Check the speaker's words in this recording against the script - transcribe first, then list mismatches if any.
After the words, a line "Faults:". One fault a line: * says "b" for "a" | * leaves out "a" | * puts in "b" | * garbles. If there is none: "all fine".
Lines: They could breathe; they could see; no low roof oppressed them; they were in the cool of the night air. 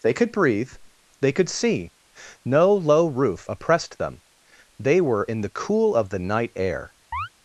They could breathe; they could see; no low roof oppressed them; they were in the cool of the night air.
Faults:
all fine